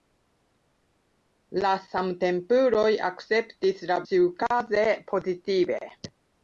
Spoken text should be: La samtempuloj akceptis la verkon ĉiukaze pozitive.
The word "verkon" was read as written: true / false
false